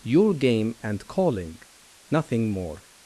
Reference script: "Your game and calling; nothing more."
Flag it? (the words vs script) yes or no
no